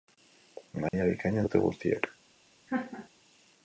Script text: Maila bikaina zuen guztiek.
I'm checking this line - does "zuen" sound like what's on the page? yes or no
no